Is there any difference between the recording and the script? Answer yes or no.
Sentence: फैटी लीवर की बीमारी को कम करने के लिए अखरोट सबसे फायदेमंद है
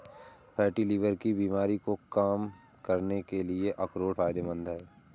yes